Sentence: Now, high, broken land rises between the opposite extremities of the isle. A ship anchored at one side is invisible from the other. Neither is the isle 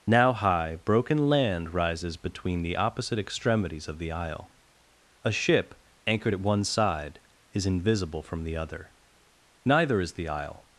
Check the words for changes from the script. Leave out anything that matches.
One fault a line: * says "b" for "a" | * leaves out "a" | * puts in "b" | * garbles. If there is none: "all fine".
all fine